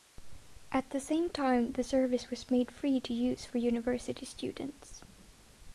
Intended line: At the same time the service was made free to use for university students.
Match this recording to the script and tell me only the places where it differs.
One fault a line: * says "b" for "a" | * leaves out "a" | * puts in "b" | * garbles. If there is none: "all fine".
all fine